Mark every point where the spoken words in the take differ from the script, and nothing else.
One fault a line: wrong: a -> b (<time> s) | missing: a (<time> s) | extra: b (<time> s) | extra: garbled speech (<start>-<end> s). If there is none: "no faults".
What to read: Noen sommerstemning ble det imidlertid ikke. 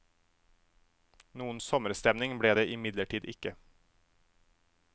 no faults